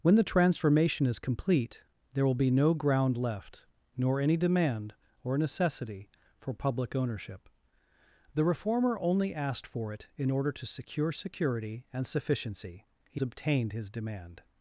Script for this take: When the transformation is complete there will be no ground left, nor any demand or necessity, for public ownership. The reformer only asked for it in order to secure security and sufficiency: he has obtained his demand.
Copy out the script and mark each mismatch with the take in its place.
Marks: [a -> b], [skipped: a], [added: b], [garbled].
When the transformation is complete there will be no ground left, nor any demand or necessity, for public ownership. The reformer only asked for it in order to secure security and sufficiency: he [skipped: has] obtained his demand.